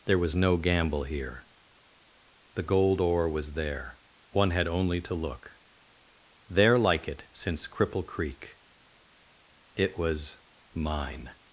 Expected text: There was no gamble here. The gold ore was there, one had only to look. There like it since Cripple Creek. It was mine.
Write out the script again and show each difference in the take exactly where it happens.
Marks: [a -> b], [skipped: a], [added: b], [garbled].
There was no gamble here. The gold ore was there, one had only to look. There like it since Cripple Creek. It was mine.